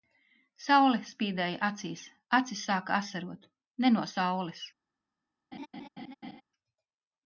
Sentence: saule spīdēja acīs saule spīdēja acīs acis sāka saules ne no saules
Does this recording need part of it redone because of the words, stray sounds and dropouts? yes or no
yes